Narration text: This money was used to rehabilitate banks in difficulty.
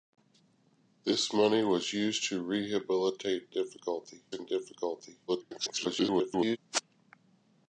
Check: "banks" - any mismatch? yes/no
yes